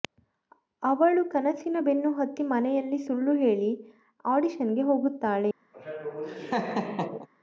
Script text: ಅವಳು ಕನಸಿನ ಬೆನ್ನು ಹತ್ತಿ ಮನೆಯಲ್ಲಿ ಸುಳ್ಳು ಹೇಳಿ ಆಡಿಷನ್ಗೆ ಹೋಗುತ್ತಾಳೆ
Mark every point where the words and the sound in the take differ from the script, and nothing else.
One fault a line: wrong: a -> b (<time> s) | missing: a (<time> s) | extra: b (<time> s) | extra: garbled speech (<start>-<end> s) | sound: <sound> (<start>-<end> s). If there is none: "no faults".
sound: laugh (5.7-7.3 s)